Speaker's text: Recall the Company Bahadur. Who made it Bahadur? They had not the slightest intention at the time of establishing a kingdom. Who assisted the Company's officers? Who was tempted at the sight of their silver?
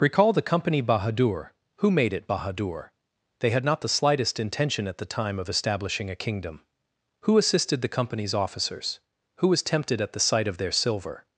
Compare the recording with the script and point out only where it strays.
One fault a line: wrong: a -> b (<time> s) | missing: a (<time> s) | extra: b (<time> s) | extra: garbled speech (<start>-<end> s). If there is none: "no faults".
no faults